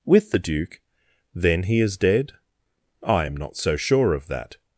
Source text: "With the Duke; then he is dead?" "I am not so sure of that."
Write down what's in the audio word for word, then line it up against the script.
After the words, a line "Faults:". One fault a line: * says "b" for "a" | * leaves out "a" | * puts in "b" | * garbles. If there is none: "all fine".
"With the Duke; then he is dead?" "I am not so sure of that."
Faults:
all fine